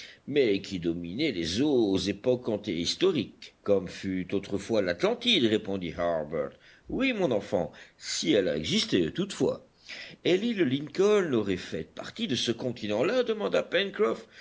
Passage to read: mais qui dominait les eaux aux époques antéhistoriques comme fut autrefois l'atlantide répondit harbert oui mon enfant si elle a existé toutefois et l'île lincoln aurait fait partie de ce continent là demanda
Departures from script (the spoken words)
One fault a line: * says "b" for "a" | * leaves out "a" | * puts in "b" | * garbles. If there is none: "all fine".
all fine